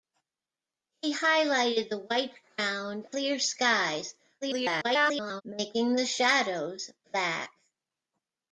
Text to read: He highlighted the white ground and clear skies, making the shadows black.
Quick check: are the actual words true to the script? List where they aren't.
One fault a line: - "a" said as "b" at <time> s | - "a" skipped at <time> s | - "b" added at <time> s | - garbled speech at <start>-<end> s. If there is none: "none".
- "and" skipped at 3.0 s
- garbled speech at 4.4-5.4 s